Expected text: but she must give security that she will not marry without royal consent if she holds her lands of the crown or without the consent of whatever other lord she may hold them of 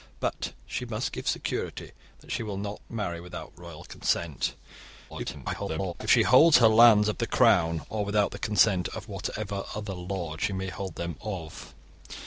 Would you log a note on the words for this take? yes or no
yes